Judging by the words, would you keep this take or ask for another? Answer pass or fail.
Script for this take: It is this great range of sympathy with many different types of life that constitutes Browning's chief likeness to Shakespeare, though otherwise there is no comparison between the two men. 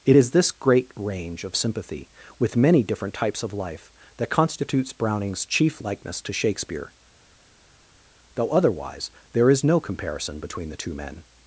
pass